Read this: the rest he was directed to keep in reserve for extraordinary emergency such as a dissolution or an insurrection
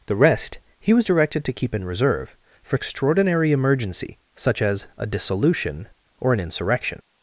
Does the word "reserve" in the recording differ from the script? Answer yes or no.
no